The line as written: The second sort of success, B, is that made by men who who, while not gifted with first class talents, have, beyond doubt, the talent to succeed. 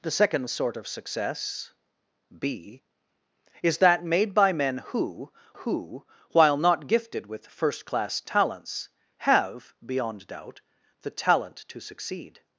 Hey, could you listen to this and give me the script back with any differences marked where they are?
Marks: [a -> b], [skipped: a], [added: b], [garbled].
The second sort of success, B, is that made by men who who, while not gifted with first class talents, have, beyond doubt, the talent to succeed.